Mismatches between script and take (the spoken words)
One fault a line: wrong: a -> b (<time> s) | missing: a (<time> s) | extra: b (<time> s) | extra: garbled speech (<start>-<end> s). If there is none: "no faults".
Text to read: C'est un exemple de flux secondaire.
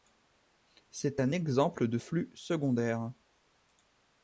no faults